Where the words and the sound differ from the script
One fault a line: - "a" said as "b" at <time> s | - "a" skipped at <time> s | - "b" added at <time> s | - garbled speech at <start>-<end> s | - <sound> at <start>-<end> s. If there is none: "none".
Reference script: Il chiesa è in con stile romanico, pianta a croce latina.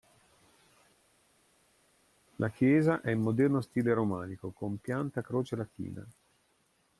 - "Il" said as "La" at 2.4 s
- "con" said as "moderno" at 3.2 s
- "con" added at 4.5 s